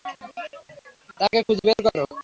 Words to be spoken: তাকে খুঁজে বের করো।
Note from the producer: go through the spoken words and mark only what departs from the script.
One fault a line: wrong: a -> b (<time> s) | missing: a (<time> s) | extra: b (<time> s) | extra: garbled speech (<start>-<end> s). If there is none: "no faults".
no faults